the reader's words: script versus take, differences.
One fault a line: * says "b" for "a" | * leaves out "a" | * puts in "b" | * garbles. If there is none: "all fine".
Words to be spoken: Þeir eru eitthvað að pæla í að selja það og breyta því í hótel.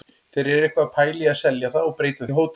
* leaves out "því"